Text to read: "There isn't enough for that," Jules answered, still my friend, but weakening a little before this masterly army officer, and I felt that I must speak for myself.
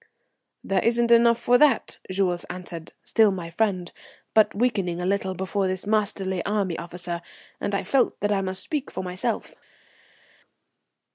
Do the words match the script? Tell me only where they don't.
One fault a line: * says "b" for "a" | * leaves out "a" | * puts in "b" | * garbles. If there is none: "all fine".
all fine